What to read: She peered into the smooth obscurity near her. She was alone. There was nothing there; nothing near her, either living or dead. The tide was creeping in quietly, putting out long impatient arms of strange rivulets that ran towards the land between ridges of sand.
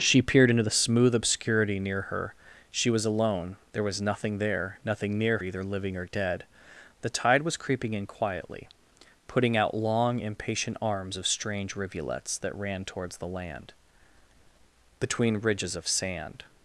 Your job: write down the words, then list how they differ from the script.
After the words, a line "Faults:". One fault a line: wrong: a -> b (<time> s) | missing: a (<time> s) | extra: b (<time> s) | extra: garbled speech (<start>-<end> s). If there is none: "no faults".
She peered into the smooth obscurity near her. She was alone. There was nothing there; nothing near either living or dead. The tide was creeping in quietly, putting out long impatient arms of strange rivulets that ran towards the land between ridges of sand.
Faults:
missing: her (5.4 s)